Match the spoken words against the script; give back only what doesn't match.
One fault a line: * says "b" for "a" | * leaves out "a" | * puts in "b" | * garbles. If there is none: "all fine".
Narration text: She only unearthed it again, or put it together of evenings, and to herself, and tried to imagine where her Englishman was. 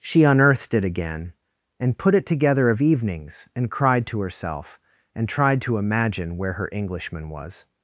* leaves out "only"
* says "and" for "or"
* puts in "cried"